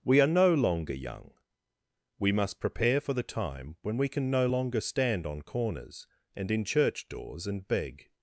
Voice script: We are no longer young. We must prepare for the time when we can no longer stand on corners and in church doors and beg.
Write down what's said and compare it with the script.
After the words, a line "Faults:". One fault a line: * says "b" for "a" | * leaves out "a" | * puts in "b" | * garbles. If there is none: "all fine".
We are no longer young. We must prepare for the time when we can no longer stand on corners and in church doors and beg.
Faults:
all fine